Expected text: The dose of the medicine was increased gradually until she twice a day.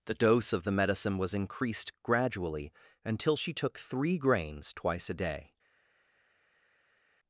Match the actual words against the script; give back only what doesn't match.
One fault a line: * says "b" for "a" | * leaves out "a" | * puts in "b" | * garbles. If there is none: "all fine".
* puts in "took three grains"